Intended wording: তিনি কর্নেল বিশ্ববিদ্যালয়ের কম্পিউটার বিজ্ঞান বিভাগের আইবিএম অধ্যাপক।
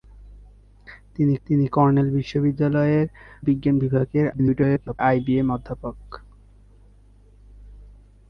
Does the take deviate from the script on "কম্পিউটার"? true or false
true